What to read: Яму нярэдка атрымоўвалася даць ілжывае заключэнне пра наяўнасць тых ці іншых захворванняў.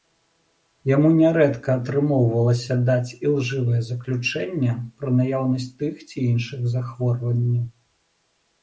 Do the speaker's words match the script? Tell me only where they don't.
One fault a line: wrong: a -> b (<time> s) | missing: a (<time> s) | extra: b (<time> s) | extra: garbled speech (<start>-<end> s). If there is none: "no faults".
no faults